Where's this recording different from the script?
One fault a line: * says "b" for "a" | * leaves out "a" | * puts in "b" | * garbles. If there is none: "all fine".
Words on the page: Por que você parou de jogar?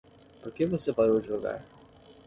all fine